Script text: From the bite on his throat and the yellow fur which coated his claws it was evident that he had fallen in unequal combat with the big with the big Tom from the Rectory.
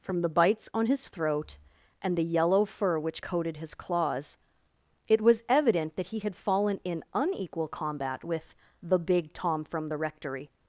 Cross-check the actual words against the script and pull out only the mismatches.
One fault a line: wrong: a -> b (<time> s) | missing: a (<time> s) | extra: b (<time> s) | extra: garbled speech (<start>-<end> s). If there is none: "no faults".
wrong: bite -> bites (0.3 s)
missing: with the big (9.3 s)